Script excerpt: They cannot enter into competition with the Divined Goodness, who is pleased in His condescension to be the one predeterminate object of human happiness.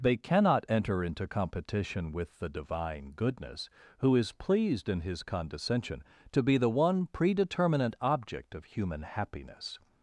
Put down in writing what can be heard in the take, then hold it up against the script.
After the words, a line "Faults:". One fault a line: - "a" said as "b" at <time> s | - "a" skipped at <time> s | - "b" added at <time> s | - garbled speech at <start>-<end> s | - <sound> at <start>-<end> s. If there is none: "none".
They cannot enter into competition with the Divine Goodness, who is pleased in His condescension to be the one predeterminate object of human happiness.
Faults:
- "Divined" said as "Divine" at 2.5 s